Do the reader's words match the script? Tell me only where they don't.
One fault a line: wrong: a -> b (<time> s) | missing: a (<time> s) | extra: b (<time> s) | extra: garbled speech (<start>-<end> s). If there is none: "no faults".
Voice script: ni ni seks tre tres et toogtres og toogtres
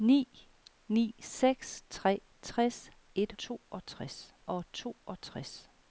no faults